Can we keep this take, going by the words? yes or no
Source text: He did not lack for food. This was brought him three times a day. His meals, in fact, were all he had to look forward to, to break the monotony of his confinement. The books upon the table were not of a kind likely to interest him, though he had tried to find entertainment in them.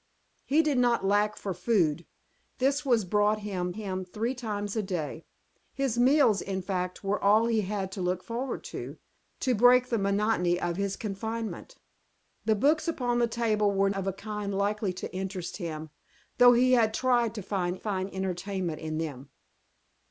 no